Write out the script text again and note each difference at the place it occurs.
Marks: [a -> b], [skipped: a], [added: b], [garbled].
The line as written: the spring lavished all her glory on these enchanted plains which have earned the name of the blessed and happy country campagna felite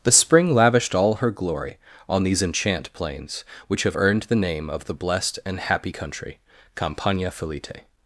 the spring lavished all her glory on these [enchanted -> enchant] plains which have earned the name of the blessed and happy country campagna felite